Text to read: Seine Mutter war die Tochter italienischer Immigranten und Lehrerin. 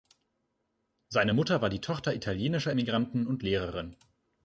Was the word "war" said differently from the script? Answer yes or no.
no